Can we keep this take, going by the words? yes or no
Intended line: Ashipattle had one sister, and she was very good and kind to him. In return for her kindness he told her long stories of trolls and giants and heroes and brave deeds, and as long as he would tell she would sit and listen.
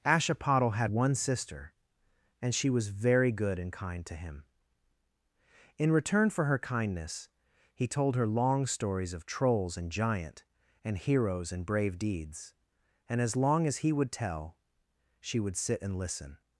no